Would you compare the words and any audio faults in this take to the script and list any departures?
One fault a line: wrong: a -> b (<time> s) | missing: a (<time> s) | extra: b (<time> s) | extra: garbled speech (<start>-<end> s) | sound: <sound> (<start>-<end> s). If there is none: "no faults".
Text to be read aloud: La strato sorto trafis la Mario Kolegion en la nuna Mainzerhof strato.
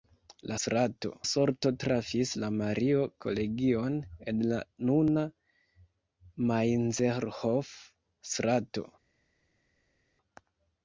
no faults